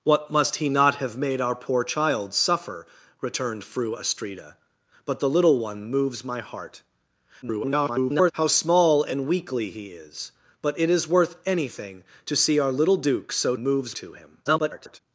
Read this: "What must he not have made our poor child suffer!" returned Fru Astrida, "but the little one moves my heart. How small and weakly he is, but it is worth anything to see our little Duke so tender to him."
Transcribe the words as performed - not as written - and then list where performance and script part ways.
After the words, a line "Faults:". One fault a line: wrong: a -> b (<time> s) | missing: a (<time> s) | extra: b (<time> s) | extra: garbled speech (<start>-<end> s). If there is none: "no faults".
"What must he not have made our poor child suffer!" returned Fru Astrida, "but the little one moves my heart. [garbled] How small and weakly he is, but it is worth anything to see our little Duke so moves to him." [garbled]
Faults:
extra: garbled speech (7.4-8.3 s)
wrong: tender -> moves (13.6 s)
extra: garbled speech (14.5-15.0 s)